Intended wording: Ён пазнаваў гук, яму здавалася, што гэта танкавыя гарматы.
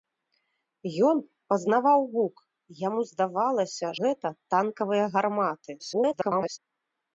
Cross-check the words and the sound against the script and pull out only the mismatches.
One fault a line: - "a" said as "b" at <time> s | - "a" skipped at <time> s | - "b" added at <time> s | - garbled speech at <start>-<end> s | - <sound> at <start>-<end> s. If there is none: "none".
- "што" skipped at 3.9 s
- garbled speech at 5.8-6.6 s